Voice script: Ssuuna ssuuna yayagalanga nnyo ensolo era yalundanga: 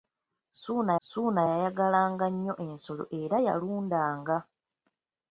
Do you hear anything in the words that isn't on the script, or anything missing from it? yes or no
no